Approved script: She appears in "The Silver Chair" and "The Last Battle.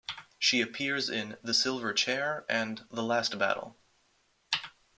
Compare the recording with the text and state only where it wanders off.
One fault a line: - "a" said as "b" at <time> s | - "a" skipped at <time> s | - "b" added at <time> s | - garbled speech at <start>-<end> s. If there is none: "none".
none